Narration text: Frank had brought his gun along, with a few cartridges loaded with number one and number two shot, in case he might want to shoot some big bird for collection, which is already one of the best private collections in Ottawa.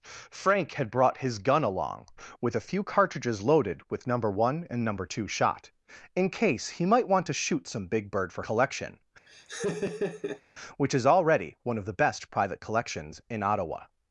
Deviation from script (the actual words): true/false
false